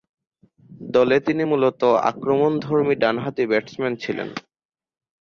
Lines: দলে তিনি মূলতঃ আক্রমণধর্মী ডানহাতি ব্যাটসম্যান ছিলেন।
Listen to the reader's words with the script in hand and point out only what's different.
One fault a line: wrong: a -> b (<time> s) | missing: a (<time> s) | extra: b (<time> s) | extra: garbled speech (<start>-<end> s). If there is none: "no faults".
no faults